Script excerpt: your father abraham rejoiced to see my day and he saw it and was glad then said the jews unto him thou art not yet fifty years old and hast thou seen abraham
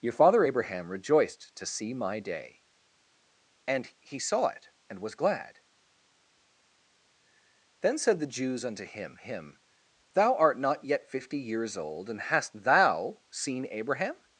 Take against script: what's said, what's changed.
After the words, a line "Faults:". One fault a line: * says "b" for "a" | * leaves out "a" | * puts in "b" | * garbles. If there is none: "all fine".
your father abraham rejoiced to see my day and he saw it and was glad then said the jews unto him him thou art not yet fifty years old and hast thou seen abraham
Faults:
* puts in "him"